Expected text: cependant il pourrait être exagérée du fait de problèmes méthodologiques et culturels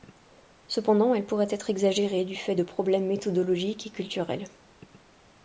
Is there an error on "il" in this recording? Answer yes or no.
yes